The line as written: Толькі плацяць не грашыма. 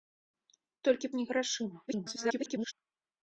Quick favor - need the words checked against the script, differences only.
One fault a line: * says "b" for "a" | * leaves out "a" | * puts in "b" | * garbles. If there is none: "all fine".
* leaves out "плацяць"
* garbles